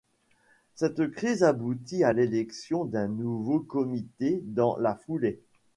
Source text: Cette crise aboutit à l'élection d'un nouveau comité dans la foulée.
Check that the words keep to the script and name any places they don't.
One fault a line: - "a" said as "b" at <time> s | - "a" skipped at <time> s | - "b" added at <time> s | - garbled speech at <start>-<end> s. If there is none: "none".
none